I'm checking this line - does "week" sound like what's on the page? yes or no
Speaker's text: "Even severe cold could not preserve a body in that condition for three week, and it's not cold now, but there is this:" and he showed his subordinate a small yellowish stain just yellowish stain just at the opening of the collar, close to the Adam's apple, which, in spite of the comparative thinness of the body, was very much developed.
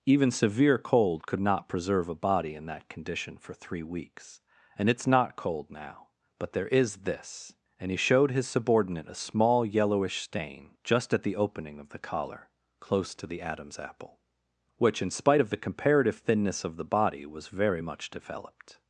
no